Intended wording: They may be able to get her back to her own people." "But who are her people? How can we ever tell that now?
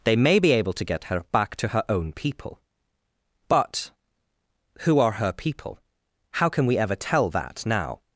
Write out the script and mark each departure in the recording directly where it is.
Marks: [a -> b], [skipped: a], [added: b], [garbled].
They may be able to get her back to her own people." "But who are her people? How can we ever tell that now?